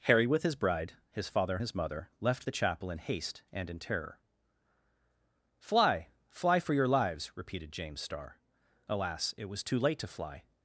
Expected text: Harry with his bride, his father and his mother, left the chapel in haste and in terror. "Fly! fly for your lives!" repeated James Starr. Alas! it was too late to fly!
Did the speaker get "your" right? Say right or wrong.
right